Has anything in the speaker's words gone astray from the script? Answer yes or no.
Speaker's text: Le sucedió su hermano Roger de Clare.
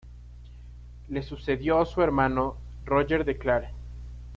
no